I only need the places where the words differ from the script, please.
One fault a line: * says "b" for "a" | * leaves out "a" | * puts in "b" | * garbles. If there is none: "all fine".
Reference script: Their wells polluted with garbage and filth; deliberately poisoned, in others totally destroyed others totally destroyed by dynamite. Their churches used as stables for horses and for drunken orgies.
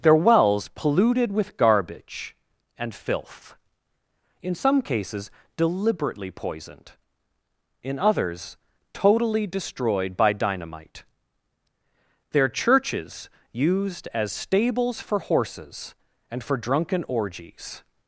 * puts in "in some cases"
* leaves out "others totally destroyed"